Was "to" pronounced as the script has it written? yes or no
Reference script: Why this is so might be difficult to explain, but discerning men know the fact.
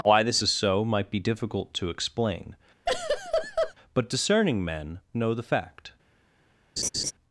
yes